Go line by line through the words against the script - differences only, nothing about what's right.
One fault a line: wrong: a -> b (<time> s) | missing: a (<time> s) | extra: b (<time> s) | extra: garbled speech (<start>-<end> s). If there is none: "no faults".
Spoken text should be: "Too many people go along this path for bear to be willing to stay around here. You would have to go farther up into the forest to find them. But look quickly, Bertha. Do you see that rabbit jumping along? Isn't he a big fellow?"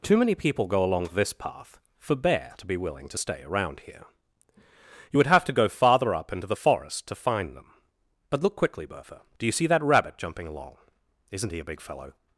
no faults